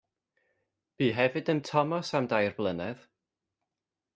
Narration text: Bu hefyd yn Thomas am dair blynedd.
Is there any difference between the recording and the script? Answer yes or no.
no